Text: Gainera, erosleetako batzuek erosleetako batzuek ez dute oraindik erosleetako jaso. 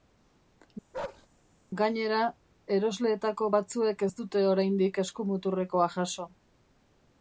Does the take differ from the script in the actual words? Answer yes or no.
yes